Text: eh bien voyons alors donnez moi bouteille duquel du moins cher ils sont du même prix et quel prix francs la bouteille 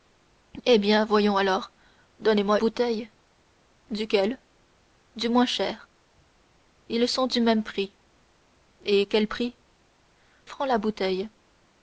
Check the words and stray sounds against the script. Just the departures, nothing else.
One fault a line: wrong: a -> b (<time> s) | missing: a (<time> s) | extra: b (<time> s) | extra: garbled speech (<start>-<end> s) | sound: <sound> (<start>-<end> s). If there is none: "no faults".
no faults